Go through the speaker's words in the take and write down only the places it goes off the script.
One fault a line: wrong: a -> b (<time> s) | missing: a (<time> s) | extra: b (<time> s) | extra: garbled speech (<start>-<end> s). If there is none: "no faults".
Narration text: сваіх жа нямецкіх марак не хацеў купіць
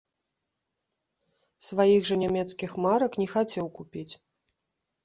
no faults